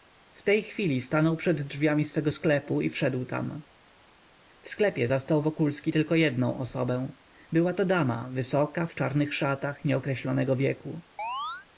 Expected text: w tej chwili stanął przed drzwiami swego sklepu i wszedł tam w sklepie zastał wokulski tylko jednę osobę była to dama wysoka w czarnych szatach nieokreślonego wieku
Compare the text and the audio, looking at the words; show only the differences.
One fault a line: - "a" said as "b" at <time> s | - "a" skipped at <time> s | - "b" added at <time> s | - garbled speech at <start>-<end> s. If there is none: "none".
none